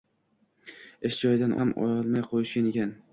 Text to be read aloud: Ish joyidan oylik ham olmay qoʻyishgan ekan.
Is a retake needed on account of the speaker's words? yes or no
yes